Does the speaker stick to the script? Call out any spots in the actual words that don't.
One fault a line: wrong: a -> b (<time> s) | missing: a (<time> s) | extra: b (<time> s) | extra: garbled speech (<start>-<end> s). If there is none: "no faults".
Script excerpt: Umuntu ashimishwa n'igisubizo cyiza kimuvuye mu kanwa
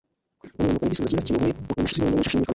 missing: ashimishwa (0.8 s)
extra: garbled speech (1.8-2.5 s)